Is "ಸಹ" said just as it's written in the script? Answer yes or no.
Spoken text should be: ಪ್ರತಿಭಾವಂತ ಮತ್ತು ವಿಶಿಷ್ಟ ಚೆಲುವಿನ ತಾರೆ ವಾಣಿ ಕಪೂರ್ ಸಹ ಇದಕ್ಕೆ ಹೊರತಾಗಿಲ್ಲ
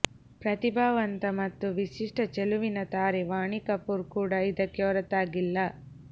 no